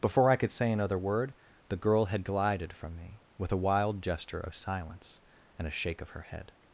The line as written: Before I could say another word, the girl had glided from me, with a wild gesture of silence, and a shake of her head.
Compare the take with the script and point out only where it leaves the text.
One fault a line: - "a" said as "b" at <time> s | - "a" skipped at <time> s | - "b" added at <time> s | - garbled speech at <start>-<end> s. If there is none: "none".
none